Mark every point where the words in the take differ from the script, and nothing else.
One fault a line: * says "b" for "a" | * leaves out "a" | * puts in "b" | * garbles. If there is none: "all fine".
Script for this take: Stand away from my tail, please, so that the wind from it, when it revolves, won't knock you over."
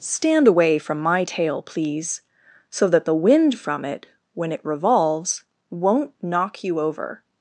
all fine